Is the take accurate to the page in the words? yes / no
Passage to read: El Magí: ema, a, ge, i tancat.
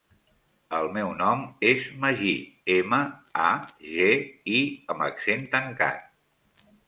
no